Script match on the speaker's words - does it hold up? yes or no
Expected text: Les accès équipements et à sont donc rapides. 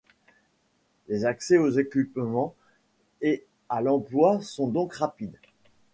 no